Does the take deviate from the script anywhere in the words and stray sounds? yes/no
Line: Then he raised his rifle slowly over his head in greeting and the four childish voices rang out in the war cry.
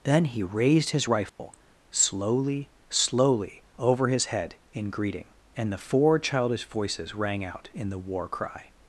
yes